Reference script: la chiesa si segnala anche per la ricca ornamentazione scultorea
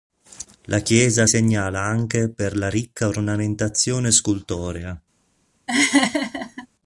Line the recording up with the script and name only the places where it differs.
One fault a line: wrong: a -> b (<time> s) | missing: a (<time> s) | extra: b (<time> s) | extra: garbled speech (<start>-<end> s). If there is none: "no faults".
missing: si (1.3 s)